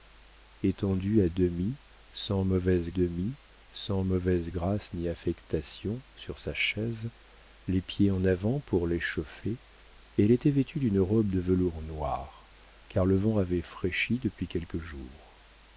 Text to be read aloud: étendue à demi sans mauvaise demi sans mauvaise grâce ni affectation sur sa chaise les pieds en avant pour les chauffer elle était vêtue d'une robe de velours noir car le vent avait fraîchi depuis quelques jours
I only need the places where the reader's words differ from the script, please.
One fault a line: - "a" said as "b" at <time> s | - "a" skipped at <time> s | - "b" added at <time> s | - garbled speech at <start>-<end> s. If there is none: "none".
none